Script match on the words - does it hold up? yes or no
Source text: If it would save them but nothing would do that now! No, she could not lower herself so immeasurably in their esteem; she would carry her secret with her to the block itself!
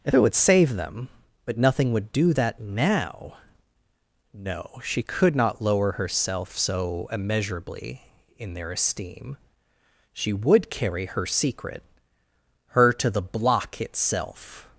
no